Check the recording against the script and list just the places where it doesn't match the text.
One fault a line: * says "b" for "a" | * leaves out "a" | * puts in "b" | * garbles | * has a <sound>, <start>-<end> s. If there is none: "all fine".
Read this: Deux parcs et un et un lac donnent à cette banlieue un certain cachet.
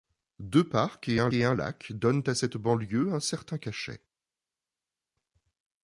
all fine